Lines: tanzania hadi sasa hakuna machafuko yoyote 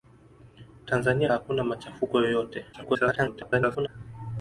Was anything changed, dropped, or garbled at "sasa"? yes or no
yes